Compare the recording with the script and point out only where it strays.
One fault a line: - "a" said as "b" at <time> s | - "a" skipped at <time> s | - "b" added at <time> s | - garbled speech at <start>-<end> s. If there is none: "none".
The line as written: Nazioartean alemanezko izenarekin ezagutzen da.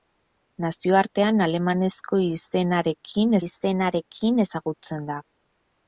- "izenarekin" added at 3.4 s